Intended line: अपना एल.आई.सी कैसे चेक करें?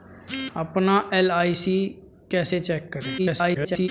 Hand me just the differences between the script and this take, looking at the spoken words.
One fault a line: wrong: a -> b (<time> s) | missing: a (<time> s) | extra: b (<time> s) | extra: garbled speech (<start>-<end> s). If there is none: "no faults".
extra: garbled speech (3.2-3.9 s)